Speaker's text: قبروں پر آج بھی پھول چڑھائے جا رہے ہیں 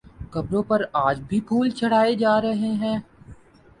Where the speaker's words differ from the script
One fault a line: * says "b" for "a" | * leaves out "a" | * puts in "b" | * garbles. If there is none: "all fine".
all fine